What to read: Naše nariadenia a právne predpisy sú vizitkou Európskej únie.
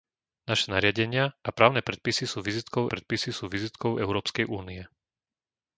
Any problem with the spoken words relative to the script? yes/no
yes